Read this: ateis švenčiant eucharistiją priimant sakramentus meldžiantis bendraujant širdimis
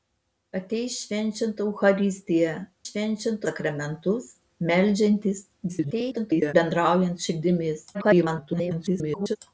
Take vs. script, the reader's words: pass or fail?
fail